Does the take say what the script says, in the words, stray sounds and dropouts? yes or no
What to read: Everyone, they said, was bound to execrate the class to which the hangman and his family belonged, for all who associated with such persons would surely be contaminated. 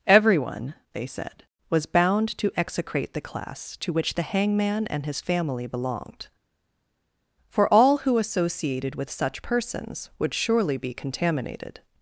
yes